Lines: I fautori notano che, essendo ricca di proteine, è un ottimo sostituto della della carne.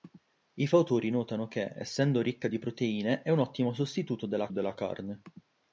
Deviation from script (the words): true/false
false